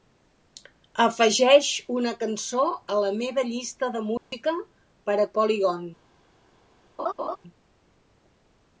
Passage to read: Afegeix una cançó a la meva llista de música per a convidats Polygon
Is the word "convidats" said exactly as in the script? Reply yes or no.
no